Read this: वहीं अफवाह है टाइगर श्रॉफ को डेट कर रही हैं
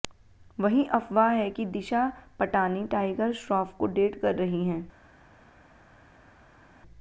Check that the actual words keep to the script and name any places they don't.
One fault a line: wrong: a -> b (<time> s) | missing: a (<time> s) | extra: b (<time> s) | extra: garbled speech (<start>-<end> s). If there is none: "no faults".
extra: कि दिशा पटानी (1.5 s)